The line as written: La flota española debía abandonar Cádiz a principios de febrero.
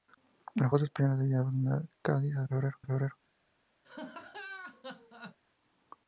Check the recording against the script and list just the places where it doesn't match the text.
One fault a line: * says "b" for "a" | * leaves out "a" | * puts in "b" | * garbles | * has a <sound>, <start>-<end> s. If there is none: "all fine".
* says "febrero" for "principios"
* has a laugh, 3.8-5.4 s